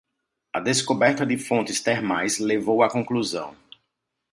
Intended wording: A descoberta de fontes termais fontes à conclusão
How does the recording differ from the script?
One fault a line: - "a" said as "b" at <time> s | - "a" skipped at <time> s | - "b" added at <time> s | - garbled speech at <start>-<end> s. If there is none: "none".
- "fontes" said as "levou" at 2.4 s